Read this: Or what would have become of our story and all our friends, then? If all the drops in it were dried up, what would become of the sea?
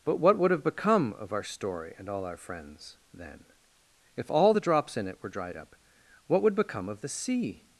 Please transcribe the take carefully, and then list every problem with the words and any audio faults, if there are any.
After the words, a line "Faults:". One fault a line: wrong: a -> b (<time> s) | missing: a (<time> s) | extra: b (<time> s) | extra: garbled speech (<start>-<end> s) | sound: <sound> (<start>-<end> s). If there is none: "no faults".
But what would have become of our story and all our friends, then? If all the drops in it were dried up, what would become of the sea?
Faults:
wrong: Or -> But (0.0 s)